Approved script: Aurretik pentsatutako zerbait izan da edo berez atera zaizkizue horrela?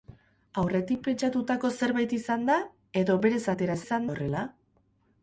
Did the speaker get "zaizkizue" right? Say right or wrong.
wrong